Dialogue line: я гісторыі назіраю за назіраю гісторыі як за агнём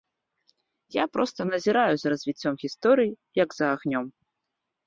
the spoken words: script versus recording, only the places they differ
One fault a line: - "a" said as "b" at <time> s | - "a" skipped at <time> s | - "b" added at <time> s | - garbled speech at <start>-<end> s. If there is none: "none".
- "гісторыі" said as "проста" at 1.2 s
- "назіраю" said as "развіццём" at 2.1 s